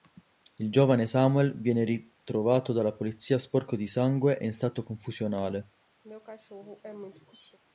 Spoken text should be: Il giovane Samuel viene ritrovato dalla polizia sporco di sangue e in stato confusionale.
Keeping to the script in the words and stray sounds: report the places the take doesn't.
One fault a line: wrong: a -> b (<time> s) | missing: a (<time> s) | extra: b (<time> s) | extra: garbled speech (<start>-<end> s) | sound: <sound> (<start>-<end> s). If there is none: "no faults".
sound: throat clearing (6.0-7.6 s)